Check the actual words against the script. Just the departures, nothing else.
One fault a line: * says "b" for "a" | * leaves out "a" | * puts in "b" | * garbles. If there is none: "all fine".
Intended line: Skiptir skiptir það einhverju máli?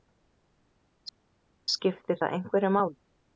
* leaves out "skiptir"